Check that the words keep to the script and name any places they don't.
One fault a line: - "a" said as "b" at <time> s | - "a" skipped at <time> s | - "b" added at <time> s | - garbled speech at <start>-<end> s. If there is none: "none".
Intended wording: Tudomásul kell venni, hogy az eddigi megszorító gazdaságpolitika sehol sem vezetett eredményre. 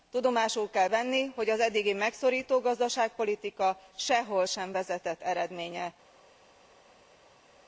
none